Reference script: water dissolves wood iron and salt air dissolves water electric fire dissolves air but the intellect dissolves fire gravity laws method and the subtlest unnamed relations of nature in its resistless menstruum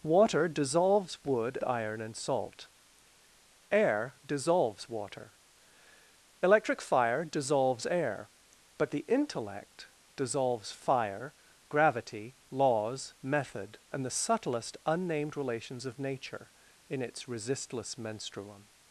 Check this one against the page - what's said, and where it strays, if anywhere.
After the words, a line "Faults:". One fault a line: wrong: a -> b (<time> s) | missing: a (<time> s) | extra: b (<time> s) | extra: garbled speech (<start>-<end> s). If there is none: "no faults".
water dissolves wood iron and salt air dissolves water electric fire dissolves air but the intellect dissolves fire gravity laws method and the subtlest unnamed relations of nature in its resistless menstruum
Faults:
no faults